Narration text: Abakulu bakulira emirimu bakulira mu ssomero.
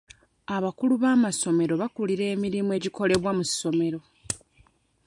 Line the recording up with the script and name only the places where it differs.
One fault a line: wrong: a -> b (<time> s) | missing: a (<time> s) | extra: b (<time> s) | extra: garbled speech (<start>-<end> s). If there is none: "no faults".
extra: b'amasomero (1.0 s)
wrong: bakulira -> egikolebwa (2.8 s)